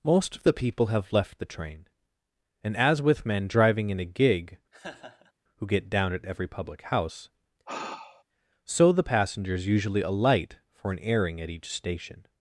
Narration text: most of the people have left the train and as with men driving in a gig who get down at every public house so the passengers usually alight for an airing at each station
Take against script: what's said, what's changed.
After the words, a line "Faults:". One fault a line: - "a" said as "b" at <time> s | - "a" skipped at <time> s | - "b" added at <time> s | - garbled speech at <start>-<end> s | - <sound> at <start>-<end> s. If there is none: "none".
most of the people have left the train and as with men driving in a gig who get down at every public house so the passengers usually alight for an airing at each station
Faults:
- laugh at 4.7-5.3 s
- sigh at 7.7-8.2 s